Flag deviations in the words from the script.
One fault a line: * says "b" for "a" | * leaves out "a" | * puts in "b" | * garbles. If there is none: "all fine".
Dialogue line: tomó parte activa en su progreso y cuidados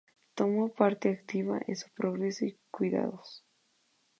all fine